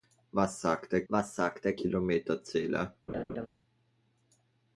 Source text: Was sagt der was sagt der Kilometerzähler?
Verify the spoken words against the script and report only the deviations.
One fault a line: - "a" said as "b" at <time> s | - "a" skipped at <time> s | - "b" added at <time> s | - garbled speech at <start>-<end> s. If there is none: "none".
none